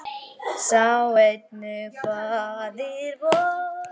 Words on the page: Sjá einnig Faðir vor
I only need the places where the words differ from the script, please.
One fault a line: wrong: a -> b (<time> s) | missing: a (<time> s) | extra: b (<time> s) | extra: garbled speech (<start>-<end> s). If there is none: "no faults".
no faults